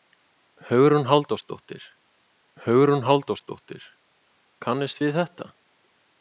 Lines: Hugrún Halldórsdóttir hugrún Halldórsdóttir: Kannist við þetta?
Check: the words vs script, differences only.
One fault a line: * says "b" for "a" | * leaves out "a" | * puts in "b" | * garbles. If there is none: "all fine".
all fine